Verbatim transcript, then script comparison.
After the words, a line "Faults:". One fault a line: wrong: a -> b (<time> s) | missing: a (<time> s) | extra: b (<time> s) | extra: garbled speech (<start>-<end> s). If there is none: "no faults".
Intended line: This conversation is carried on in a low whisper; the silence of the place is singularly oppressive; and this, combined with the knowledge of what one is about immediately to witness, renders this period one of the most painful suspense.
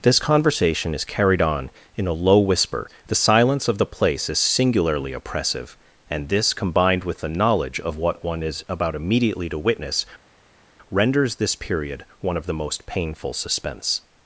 This conversation is carried on in a low whisper; the silence of the place is singularly oppressive; and this, combined with the knowledge of what one is about immediately to witness, renders this period one of the most painful suspense.
Faults:
no faults